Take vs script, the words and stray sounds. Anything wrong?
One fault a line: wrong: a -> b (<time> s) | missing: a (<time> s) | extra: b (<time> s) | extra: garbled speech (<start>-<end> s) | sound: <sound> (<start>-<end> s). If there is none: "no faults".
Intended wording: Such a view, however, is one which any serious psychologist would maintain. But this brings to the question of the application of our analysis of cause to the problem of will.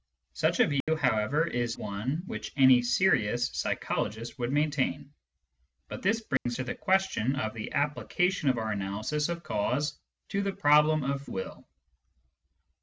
sound: dropout (0.8-0.9 s)
sound: dropout (6.4-6.5 s)